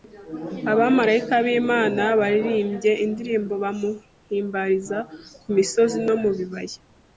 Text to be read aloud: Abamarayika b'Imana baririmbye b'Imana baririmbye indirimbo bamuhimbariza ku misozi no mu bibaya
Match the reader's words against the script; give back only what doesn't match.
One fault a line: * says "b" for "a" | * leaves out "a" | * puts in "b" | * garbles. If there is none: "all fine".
* leaves out "b'Imana baririmbye"